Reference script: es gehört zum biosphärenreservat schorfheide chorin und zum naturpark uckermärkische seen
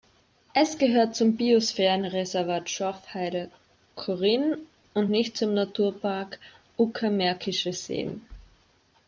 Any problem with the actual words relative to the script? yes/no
yes